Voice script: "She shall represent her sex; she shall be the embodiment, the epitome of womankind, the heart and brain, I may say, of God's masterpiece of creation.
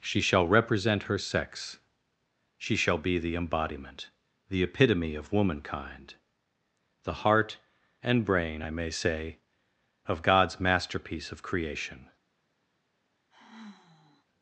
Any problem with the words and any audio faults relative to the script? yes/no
yes